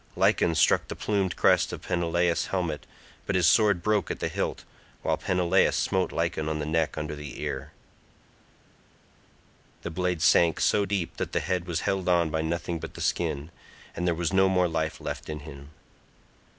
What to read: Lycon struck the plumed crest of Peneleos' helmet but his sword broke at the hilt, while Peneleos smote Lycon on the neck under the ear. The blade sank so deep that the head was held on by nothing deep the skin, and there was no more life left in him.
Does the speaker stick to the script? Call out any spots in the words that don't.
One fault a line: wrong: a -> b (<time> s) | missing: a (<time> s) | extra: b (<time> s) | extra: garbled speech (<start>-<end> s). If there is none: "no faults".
wrong: deep -> but (12.8 s)